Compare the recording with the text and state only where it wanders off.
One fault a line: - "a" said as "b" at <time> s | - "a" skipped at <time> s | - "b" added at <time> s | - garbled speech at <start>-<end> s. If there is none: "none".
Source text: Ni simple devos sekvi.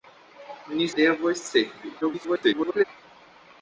- "simple" skipped at 0.9 s
- garbled speech at 2.0-2.8 s